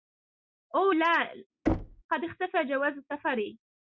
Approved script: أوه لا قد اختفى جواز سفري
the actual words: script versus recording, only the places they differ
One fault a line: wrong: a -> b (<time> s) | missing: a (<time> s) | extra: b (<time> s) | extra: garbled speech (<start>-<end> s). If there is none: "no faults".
no faults